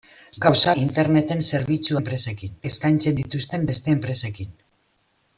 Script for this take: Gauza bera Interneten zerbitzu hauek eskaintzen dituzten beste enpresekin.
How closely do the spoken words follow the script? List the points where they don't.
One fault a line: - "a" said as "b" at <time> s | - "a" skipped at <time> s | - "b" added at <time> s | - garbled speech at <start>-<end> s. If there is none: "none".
- "bera" skipped at 0.7 s
- "hauek" said as "enpresekin" at 2.0 s